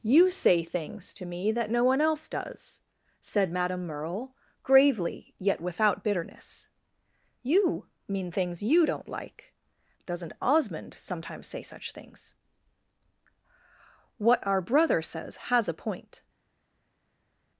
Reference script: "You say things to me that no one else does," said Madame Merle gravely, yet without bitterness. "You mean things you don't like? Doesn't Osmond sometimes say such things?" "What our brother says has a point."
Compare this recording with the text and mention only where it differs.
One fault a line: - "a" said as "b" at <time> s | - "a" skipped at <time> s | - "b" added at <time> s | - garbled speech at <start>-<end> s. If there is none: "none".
none